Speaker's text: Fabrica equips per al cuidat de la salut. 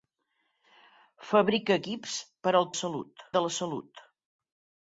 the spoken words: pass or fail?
fail